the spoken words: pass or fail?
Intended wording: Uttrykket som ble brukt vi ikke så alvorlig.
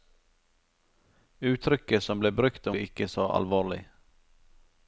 pass